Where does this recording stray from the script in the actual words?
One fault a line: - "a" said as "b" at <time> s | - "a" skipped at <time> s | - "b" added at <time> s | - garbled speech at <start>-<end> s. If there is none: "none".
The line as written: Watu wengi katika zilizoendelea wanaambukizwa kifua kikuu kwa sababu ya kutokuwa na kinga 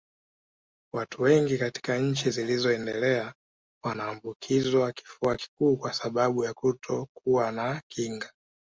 - "nchi" added at 2.0 s